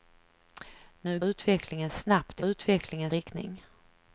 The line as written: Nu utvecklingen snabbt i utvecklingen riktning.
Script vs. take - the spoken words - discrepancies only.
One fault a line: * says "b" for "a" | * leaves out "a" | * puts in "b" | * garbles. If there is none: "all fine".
all fine